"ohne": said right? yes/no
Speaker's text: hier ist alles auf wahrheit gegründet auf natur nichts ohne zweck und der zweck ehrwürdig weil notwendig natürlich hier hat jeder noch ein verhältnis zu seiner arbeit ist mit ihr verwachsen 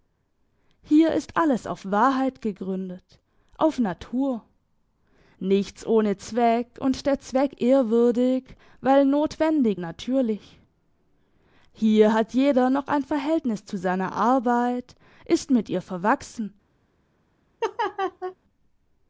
yes